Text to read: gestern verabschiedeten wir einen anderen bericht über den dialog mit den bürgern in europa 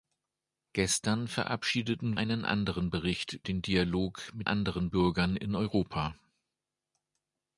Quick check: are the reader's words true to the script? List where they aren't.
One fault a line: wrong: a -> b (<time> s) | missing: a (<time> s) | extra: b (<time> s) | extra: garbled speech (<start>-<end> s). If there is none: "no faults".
missing: wir (2.2 s)
missing: über (3.4 s)
wrong: den -> anderen (4.4 s)